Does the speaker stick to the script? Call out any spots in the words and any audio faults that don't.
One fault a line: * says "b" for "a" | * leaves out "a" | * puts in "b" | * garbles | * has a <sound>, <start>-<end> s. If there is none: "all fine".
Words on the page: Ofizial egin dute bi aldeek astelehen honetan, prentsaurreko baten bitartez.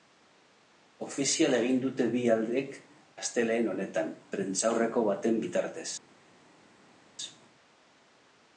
all fine